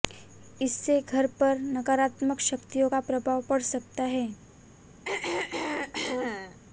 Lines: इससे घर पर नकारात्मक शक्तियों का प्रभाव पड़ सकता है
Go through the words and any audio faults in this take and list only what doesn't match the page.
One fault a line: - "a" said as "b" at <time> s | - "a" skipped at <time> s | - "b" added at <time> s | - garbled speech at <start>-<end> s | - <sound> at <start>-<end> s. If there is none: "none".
- throat clearing at 5.0-6.6 s